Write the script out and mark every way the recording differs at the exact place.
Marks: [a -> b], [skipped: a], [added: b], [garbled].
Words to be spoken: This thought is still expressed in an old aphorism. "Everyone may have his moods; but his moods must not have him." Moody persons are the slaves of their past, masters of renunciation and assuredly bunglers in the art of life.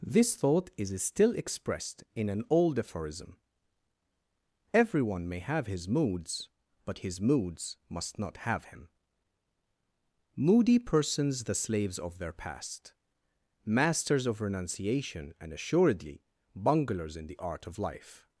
This thought is still expressed in an old aphorism. "Everyone may have his moods; but his moods must not have him." Moody persons [skipped: are] the slaves of their past, masters of renunciation and assuredly bunglers in the art of life.